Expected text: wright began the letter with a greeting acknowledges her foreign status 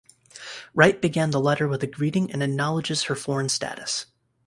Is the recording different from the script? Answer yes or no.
yes